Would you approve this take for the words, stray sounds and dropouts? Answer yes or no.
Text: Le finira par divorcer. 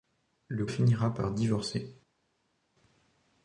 yes